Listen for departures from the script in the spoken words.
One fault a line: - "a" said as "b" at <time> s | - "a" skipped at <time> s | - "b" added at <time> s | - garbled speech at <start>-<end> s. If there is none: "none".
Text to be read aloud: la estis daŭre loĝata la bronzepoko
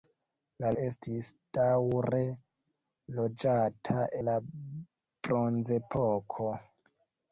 none